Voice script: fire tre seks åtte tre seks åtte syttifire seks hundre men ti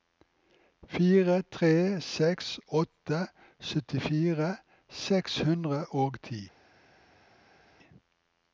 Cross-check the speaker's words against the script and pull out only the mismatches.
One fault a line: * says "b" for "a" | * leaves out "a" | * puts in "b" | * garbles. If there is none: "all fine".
* leaves out "tre seks åtte"
* says "og" for "men"